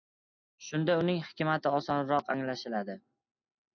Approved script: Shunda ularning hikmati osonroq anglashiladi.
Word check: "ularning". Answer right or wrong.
wrong